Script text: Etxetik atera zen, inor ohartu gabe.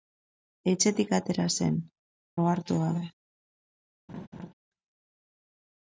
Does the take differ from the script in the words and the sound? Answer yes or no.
yes